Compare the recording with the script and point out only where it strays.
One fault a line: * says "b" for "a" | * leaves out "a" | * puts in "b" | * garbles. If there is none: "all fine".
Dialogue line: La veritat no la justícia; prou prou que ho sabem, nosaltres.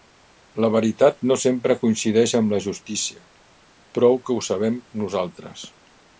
* puts in "sempre coincideix amb"
* leaves out "prou"